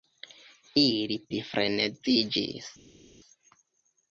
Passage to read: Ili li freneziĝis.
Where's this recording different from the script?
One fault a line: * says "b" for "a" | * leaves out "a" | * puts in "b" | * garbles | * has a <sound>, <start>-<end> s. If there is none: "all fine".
all fine